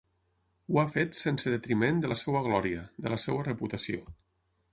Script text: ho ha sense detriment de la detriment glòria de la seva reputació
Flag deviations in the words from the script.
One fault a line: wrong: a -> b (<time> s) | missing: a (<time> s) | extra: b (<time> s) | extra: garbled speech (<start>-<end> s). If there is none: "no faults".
extra: fet (0.9 s)
wrong: detriment -> seva (2.2 s)